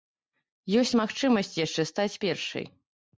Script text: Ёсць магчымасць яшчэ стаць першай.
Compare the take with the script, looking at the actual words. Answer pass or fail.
pass